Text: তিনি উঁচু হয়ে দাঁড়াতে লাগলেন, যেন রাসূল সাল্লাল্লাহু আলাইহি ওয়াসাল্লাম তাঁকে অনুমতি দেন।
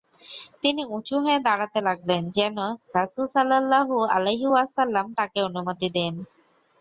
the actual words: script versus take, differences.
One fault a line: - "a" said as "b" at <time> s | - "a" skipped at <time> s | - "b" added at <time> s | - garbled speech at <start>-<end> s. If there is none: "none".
none